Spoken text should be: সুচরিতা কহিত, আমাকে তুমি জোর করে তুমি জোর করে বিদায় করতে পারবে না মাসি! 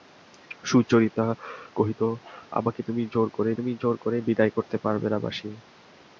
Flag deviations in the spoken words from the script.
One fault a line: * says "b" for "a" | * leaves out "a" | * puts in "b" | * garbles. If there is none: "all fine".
all fine